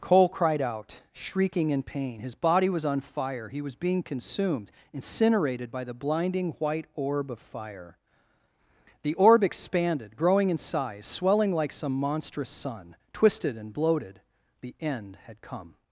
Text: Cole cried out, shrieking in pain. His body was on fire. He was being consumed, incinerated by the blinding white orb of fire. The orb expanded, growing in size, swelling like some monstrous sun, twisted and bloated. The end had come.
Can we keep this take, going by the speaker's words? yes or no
yes